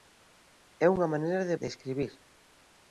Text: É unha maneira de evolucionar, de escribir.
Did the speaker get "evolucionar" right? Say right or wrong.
wrong